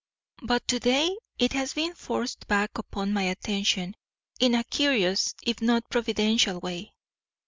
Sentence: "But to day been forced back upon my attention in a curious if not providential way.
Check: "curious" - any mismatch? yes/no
no